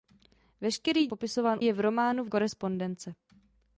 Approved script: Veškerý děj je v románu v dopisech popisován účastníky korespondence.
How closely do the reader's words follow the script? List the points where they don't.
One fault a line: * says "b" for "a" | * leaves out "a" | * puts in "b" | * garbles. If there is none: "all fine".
* says "popisován" for "děj"
* leaves out "dopisech popisován účastníky"